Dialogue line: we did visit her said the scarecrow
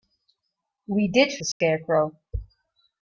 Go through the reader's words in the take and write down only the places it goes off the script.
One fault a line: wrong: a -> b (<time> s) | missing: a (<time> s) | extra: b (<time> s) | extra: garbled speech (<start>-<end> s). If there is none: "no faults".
missing: visit her said (1.4 s)